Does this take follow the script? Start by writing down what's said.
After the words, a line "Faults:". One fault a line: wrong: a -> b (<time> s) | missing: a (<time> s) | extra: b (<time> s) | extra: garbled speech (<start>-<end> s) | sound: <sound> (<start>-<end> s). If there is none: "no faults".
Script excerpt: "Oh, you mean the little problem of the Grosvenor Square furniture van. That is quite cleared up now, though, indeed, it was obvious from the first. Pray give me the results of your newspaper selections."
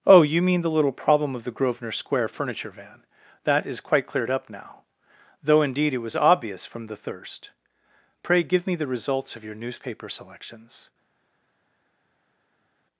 "Oh, you mean the little problem of the Grosvenor Square furniture van. That is quite cleared up now, though, indeed, it was obvious from the thirst. Pray give me the results of your newspaper selections."
Faults:
wrong: first -> thirst (7.0 s)